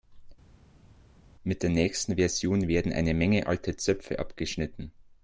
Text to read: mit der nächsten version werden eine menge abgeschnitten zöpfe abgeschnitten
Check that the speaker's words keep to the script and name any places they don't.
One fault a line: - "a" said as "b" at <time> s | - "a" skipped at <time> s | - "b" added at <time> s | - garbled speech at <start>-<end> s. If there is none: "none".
- "abgeschnitten" said as "alte" at 3.5 s